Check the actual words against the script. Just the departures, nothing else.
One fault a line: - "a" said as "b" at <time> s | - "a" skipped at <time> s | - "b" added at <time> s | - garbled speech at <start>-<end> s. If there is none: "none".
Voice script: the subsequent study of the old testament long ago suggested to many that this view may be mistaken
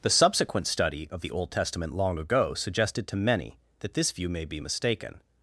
none